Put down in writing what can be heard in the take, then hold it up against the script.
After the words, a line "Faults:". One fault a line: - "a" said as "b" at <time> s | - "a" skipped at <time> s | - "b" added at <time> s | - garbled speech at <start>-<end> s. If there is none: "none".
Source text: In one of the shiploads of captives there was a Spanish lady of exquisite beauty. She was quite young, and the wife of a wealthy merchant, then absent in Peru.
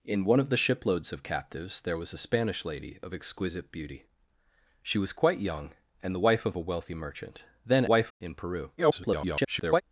In one of the shiploads of captives there was a Spanish lady of exquisite beauty. She was quite young, and the wife of a wealthy merchant, then wife in Peru. [garbled]
Faults:
- "absent" said as "wife" at 7.8 s
- garbled speech at 8.8-9.8 s